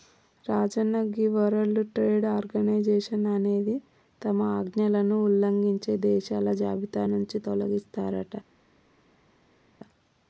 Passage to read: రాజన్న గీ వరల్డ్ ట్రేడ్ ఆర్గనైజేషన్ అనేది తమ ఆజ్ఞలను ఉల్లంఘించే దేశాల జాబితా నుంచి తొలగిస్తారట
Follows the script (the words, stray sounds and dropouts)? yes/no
yes